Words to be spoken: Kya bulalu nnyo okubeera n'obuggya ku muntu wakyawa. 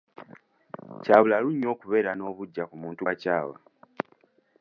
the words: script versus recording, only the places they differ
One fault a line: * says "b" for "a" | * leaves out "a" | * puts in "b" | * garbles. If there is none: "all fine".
all fine